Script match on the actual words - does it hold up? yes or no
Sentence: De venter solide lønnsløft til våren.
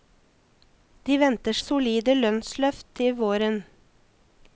yes